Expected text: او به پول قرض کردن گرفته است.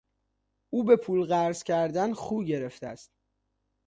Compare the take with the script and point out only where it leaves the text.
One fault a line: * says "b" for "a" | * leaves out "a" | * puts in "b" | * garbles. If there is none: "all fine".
* puts in "خو"